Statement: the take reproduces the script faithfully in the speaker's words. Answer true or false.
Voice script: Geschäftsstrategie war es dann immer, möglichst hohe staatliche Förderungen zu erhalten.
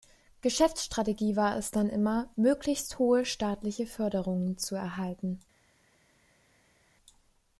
true